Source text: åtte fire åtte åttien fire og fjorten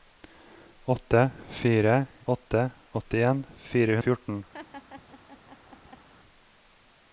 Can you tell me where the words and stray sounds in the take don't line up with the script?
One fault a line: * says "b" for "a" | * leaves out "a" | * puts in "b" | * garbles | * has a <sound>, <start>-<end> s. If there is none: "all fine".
* has a laugh, 4.5-6.1 s